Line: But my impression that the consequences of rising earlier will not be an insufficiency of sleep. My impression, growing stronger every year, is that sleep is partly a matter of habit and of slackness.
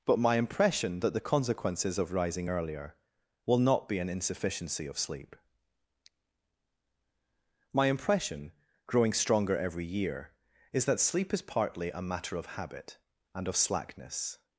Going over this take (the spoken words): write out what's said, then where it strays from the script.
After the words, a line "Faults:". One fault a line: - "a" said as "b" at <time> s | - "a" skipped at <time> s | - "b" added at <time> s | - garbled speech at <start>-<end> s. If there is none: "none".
But my impression that the consequences of rising earlier will not be an insufficiency of sleep. My impression, growing stronger every year, is that sleep is partly a matter of habit and of slackness.
Faults:
none